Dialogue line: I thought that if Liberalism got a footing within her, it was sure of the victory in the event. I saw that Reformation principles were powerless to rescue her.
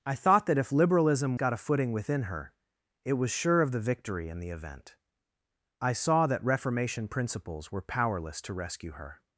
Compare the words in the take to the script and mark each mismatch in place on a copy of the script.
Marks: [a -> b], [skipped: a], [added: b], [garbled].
I thought that if Liberalism got a footing within her, it was sure of the victory in the event. I saw that Reformation principles were powerless to rescue her.